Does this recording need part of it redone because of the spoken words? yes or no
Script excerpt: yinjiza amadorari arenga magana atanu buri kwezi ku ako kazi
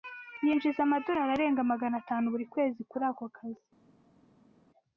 yes